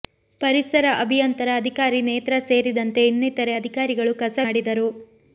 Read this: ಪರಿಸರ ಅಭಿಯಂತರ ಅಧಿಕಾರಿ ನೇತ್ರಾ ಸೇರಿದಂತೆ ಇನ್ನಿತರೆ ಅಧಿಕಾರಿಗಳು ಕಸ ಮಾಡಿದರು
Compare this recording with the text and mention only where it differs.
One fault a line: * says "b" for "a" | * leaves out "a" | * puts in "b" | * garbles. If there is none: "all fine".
all fine